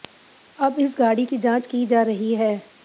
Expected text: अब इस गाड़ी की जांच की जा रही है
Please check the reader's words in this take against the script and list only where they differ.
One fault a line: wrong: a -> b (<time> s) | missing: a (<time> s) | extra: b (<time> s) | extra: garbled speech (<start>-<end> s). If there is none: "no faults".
no faults